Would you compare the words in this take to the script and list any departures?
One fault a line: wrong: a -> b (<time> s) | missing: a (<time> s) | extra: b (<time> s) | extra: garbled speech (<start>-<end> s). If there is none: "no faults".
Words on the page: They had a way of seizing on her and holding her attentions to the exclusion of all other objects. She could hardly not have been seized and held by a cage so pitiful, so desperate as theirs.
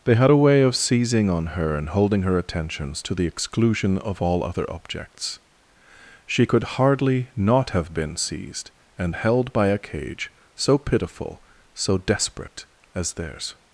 no faults